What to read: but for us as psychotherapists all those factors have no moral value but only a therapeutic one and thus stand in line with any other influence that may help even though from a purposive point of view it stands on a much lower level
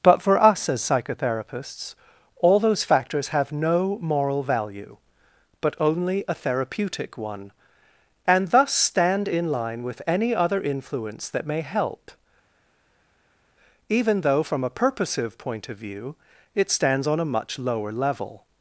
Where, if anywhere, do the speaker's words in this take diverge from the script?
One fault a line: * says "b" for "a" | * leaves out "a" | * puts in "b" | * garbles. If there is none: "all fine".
all fine